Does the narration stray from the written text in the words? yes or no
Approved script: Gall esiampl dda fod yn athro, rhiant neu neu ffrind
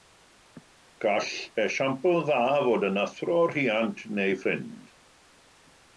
yes